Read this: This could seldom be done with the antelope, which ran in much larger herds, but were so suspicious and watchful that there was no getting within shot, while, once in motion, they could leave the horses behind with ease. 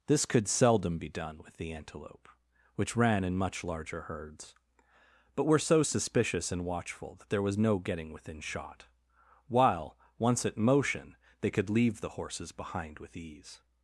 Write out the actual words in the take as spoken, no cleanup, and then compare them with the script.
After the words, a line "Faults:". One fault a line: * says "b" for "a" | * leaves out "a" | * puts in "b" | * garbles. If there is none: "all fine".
This could seldom be done with the antelope, which ran in much larger herds, but were so suspicious and watchful that there was no getting within shot, while, once at motion, they could leave the horses behind with ease.
Faults:
* says "at" for "in"